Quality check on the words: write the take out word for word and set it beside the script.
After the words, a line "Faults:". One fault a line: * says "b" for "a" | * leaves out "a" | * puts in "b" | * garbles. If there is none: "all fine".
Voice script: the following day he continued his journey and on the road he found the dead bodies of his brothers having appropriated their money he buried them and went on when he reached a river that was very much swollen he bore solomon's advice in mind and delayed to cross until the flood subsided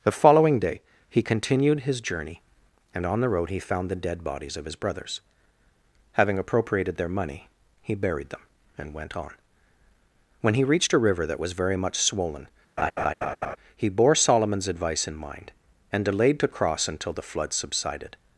the following day he continued his journey and on the road he found the dead bodies of his brothers having appropriated their money he buried them and went on when he reached a river that was very much swollen he bore solomon's advice in mind and delayed to cross until the flood subsided
Faults:
all fine